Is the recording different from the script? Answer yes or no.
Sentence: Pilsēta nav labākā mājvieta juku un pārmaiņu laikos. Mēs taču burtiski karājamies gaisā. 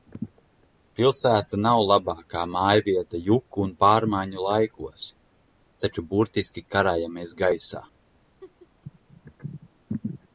yes